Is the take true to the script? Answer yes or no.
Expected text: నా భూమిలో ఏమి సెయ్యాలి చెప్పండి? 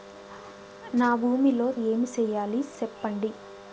yes